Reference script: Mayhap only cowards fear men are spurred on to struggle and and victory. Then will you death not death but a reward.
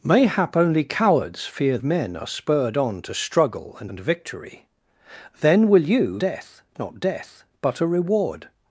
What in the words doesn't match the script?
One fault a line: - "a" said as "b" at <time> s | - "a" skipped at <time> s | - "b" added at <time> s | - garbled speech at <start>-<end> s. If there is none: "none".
none